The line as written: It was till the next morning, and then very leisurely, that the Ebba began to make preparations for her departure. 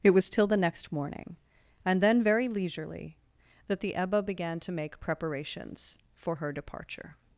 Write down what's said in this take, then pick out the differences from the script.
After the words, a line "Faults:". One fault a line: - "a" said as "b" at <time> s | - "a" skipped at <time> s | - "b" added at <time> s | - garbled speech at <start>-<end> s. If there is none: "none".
It was till the next morning, and then very leisurely, that the Ebba began to make preparations for her departure.
Faults:
none